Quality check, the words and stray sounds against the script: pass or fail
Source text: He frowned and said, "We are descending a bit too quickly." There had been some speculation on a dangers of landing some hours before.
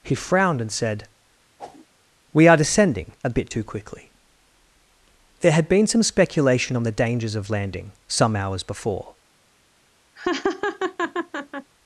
fail